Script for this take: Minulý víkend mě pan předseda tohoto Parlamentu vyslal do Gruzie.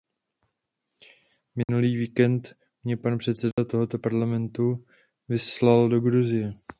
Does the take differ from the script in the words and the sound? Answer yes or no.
yes